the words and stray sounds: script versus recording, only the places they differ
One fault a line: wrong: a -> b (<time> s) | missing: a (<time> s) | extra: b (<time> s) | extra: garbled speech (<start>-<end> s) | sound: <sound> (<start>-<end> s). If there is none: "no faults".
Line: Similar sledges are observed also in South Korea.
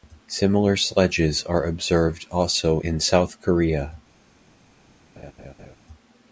sound: laugh (5.2-5.8 s)